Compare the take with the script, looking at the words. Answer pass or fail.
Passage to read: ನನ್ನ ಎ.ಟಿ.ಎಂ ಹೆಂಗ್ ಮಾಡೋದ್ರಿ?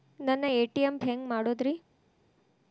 pass